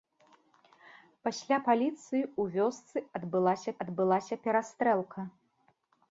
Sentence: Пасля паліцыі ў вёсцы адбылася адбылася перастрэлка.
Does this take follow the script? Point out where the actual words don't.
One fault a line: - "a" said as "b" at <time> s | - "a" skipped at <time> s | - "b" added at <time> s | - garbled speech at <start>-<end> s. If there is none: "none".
none